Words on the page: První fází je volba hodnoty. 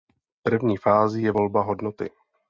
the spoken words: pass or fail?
pass